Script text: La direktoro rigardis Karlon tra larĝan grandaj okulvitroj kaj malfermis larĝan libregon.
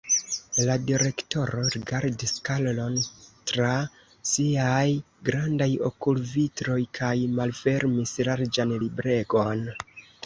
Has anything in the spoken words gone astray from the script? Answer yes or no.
yes